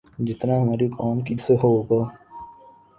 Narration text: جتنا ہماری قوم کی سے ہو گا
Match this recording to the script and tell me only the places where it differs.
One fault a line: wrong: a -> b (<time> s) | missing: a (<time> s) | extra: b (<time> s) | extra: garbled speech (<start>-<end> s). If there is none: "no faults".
no faults